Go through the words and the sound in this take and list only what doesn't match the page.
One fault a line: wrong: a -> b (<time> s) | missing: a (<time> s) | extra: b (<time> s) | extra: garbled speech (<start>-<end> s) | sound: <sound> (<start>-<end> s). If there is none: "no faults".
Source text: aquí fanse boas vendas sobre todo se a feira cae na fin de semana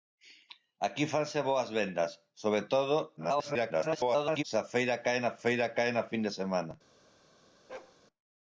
extra: garbled speech (3.2-4.4 s)
extra: feira cae na (5.4 s)
sound: bark (7.7-8.0 s)